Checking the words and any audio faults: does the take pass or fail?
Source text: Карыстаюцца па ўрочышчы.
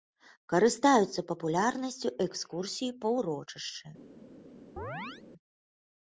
fail